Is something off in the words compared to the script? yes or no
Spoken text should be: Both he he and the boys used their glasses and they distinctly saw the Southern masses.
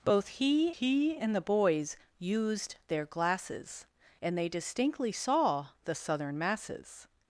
no